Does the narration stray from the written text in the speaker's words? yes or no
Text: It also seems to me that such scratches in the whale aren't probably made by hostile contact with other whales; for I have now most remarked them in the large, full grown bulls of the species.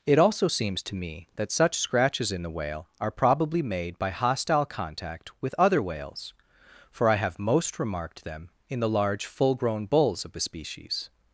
yes